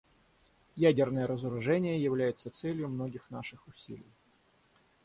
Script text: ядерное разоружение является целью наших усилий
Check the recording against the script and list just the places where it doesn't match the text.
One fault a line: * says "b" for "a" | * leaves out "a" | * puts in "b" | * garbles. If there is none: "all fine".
* puts in "многих"